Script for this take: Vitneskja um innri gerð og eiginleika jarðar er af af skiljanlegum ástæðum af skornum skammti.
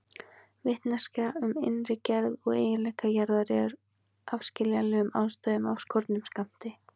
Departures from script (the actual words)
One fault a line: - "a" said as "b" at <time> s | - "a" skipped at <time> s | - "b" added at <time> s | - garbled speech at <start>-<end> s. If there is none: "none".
- "af" skipped at 4.5 s